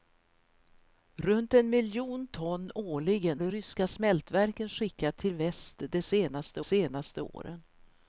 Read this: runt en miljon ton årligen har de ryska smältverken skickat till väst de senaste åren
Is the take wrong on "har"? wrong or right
wrong